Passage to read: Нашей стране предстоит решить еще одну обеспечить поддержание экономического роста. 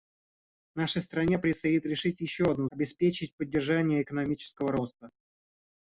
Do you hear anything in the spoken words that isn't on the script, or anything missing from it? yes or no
no